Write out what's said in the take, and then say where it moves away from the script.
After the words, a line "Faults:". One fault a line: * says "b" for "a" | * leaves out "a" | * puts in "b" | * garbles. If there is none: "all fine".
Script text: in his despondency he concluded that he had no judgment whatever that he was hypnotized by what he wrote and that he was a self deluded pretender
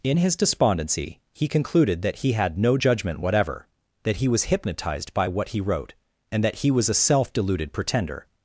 in his despondency he concluded that he had no judgment whatever that he was hypnotized by what he wrote and that he was a self deluded pretender
Faults:
all fine